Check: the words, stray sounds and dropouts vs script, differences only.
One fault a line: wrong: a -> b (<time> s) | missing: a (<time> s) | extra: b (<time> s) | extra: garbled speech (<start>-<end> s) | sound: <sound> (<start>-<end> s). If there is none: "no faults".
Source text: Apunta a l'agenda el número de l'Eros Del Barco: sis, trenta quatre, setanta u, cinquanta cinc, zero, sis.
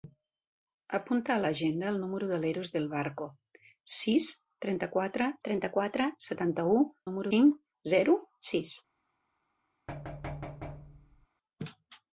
extra: trenta quatre (5.5 s)
wrong: cinquanta -> número (7.1 s)
sound: thud (9.9-11.3 s)